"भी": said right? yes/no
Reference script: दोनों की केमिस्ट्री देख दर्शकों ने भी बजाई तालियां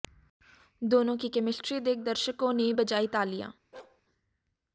no